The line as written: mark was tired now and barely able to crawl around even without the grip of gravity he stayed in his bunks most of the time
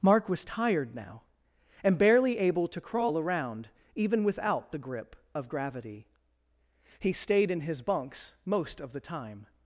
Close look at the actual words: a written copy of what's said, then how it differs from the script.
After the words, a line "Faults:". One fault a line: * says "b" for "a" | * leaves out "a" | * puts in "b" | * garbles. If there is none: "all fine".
mark was tired now and barely able to crawl around even without the grip of gravity he stayed in his bunks most of the time
Faults:
all fine